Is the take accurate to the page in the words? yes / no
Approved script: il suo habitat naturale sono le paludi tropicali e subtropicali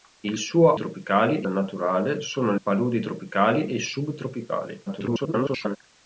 no